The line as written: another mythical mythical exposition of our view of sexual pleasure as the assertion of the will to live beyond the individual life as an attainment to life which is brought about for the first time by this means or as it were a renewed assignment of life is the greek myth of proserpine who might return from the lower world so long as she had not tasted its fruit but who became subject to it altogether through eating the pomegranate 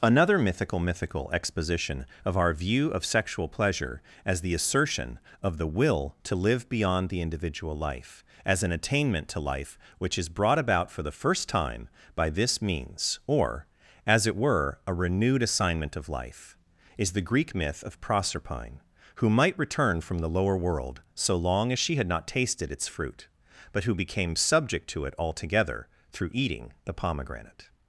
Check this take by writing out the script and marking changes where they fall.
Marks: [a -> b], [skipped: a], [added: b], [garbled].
another mythical mythical exposition of our view of sexual pleasure as the assertion of the will to live beyond the individual life as an attainment to life which is brought about for the first time by this means or as it were a renewed assignment of life is the greek myth of proserpine who might return from the lower world so long as she had not tasted its fruit but who became subject to it altogether through eating the pomegranate